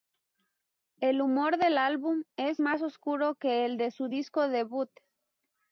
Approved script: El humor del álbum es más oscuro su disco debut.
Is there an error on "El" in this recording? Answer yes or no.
no